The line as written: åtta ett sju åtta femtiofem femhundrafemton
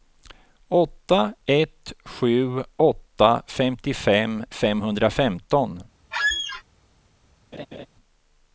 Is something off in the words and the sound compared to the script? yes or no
yes